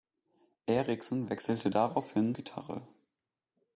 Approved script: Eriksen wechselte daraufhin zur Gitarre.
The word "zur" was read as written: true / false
false